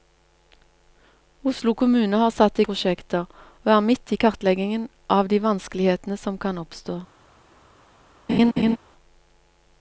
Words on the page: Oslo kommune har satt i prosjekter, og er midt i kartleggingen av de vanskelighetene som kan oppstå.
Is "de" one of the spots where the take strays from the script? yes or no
no